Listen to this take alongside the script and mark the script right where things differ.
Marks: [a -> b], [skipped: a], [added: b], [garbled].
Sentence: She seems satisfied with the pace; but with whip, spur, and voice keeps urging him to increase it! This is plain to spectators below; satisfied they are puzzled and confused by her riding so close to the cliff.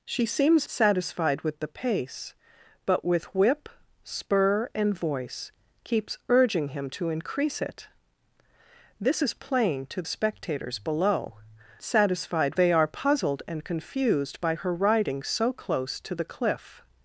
She seems satisfied with the pace; but with whip, spur, and voice keeps urging him to increase it! This is plain to spectators below; satisfied they are puzzled and confused by her riding so close to the cliff.